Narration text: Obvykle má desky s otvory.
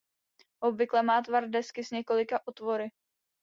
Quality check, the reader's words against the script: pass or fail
fail